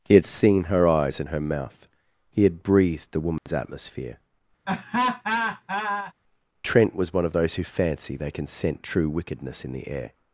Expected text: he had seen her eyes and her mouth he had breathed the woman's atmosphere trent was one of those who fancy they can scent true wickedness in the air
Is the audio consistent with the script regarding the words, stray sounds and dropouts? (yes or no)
no